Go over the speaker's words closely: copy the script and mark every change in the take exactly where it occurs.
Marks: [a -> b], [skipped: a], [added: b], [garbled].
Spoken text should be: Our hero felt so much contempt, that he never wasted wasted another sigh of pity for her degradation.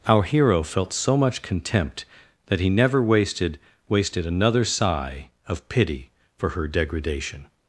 Our hero felt so much contempt, that he never wasted wasted another sigh of pity for her degradation.